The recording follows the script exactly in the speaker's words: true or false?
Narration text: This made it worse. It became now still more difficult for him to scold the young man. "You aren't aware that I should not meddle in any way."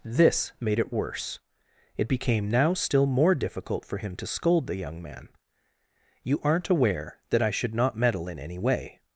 true